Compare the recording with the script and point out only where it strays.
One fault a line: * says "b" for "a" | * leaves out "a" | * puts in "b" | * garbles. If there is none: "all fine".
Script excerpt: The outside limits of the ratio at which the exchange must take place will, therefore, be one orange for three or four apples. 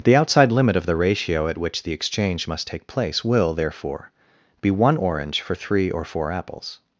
* says "limit" for "limits"